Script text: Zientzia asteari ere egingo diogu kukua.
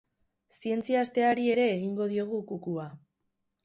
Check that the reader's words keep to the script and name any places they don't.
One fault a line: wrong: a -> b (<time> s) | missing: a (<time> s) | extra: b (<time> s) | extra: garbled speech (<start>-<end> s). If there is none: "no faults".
no faults